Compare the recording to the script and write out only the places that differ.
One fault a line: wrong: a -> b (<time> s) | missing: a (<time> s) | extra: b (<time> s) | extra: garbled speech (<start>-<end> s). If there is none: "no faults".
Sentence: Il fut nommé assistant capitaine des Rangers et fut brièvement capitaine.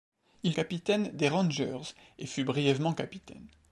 missing: fut nommé assistant (0.6 s)